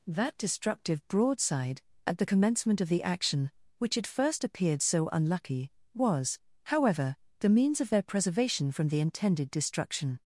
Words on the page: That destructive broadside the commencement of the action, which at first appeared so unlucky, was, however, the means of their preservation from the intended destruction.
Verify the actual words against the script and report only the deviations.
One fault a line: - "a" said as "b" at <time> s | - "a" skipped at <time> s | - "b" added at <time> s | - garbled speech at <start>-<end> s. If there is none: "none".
- "at" added at 2.1 s